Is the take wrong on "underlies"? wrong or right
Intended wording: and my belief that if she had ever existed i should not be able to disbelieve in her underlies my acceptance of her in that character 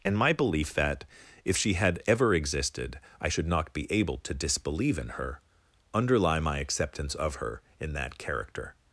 wrong